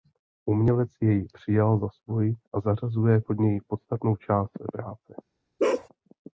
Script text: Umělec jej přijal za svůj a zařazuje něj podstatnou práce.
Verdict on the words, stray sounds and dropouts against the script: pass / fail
fail